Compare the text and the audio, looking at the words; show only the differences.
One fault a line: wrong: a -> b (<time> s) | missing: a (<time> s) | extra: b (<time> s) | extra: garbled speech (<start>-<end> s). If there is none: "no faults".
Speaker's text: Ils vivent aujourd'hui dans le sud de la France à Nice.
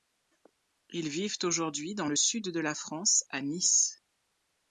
no faults